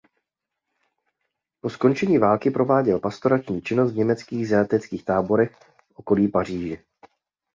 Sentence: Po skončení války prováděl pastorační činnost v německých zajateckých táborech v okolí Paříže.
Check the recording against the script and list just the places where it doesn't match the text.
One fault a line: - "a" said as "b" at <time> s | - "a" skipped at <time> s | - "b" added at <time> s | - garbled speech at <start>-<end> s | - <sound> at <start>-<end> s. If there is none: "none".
none